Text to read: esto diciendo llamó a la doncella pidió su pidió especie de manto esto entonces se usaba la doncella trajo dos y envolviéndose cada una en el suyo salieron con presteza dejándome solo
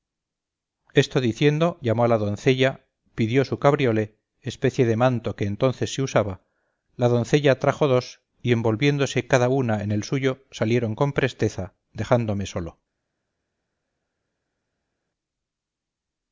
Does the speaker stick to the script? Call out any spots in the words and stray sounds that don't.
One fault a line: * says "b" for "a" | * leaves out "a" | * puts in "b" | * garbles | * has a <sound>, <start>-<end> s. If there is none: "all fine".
* says "cabriolé" for "pidió"
* says "que" for "esto"